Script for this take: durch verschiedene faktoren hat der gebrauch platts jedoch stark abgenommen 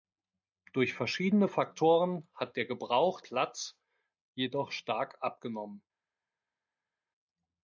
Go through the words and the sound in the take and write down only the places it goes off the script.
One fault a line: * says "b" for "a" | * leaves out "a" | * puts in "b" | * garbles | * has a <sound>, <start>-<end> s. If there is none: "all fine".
all fine